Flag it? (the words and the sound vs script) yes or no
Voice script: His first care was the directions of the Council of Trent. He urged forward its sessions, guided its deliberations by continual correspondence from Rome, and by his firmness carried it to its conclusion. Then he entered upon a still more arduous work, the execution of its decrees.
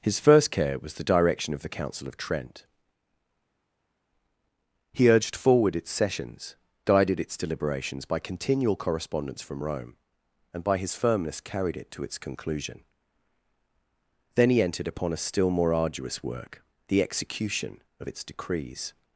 yes